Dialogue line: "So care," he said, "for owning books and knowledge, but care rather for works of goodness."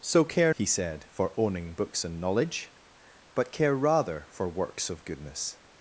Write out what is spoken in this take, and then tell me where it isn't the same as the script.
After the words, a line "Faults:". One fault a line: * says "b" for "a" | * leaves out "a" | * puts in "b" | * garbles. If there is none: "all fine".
"So care," he said, "for owning books and knowledge, but care rather for works of goodness."
Faults:
all fine